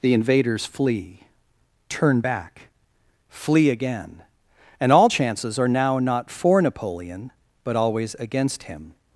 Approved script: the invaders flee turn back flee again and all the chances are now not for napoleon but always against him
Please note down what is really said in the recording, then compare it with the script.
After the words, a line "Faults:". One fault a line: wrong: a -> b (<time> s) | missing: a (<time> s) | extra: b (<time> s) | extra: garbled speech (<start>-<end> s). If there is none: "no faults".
the invaders flee turn back flee again and all chances are now not for napoleon but always against him
Faults:
missing: the (5.1 s)